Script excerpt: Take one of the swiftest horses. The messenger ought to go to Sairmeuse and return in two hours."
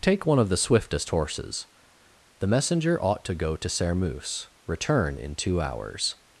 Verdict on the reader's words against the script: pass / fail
fail